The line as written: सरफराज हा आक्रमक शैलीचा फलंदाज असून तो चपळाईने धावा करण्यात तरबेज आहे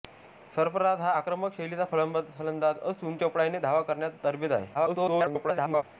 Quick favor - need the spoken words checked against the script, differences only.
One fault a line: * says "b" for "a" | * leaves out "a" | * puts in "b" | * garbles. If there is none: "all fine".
* leaves out "तो"
* garbles